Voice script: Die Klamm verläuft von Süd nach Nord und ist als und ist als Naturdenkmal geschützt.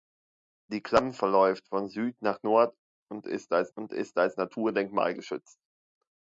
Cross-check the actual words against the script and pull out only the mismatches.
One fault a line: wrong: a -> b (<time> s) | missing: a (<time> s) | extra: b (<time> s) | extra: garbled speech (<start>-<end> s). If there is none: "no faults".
no faults